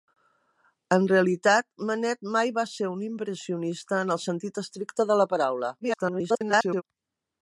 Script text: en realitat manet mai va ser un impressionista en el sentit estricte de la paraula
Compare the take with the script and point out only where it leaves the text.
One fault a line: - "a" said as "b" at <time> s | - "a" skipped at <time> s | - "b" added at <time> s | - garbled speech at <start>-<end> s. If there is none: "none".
- garbled speech at 5.8-6.8 s